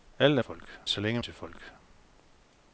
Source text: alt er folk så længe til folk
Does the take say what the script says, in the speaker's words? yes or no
yes